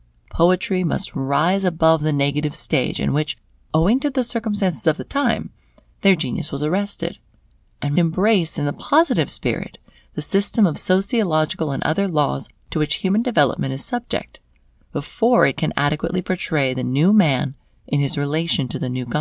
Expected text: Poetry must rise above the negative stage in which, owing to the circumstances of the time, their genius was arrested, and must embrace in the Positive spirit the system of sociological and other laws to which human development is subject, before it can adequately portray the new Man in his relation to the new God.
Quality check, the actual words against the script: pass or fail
fail